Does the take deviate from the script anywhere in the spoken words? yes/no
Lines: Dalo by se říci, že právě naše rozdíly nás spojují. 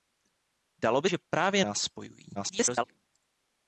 yes